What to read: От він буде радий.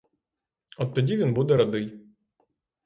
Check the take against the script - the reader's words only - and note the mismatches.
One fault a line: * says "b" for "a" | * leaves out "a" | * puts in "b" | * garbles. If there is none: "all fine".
* puts in "тоді"